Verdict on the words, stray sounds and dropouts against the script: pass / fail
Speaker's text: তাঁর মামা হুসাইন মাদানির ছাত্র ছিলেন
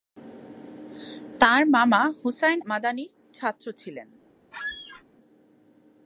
fail